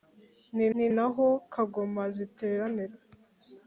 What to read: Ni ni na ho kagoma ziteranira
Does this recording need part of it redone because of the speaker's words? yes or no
no